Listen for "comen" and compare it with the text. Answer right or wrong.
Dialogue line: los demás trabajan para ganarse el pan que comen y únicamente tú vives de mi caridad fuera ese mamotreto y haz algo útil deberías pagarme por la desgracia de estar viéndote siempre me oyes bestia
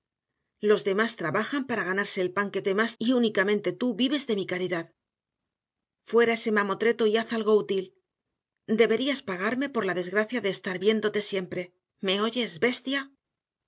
wrong